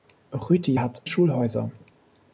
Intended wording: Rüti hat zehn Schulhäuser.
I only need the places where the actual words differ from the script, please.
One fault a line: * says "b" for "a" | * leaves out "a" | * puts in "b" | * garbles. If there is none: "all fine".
* leaves out "zehn"